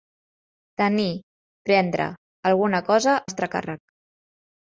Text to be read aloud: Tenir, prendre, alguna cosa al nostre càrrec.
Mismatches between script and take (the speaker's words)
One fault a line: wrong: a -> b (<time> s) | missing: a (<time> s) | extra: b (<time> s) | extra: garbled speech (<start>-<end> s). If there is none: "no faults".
missing: al (3.2 s)